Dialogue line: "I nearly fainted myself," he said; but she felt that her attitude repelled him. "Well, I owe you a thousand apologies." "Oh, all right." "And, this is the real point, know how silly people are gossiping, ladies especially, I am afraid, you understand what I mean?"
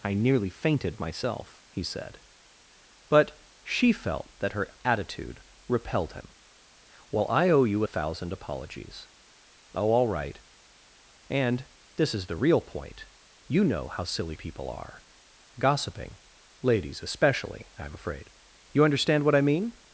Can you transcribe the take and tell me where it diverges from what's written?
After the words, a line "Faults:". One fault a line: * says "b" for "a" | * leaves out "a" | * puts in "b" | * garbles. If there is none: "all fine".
"I nearly fainted myself," he said; but she felt that her attitude repelled him. "Well, I owe you a thousand apologies." "Oh, all right." "And, this is the real point, you know how silly people are gossiping, ladies especially, I am afraid, you understand what I mean?"
Faults:
* puts in "you"